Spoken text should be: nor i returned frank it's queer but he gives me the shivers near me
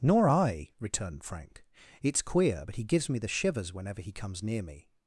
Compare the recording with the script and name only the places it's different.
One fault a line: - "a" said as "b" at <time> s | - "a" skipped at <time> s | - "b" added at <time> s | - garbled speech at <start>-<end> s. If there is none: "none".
- "whenever he comes" added at 3.7 s